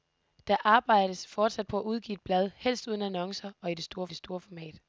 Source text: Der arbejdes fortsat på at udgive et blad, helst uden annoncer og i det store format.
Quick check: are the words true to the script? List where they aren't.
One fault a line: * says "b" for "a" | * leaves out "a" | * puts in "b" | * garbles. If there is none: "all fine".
* puts in "det store"